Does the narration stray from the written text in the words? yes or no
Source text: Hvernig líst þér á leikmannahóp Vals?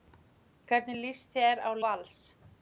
yes